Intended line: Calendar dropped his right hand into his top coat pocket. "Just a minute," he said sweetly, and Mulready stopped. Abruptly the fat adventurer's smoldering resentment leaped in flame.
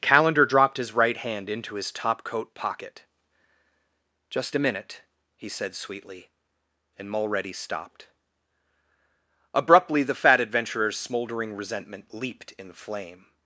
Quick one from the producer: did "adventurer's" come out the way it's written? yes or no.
yes